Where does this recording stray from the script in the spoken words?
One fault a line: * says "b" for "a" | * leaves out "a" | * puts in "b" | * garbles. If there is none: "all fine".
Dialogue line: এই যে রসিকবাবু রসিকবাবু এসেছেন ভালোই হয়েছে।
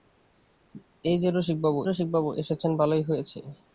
all fine